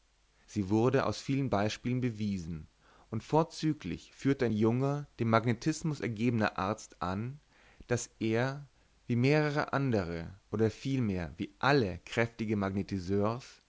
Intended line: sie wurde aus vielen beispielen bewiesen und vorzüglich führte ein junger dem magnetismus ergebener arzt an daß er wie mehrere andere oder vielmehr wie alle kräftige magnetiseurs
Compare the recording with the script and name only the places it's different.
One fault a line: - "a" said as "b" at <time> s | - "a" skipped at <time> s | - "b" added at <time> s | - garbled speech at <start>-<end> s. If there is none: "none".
none